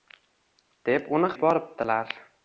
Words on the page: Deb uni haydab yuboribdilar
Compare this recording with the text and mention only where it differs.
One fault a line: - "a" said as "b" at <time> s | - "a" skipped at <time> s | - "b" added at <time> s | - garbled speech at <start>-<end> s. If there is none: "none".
- "haydab" skipped at 1.3 s